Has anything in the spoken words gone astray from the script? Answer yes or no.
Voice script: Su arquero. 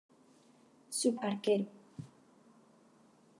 no